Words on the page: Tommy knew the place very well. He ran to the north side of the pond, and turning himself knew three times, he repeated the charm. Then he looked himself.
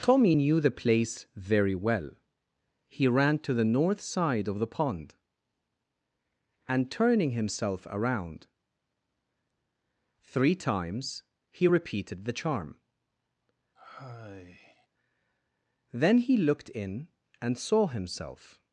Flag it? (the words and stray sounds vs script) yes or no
yes